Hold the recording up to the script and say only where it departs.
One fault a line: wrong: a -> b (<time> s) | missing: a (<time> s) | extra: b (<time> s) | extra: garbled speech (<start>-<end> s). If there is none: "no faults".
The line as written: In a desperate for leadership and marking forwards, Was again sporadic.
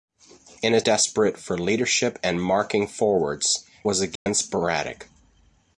no faults